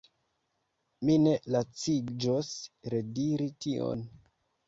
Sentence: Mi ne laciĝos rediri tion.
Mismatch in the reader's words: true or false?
false